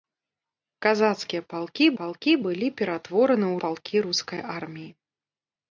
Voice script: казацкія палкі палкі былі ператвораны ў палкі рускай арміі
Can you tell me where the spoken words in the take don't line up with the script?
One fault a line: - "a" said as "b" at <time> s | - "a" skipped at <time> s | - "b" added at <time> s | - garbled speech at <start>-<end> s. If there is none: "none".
none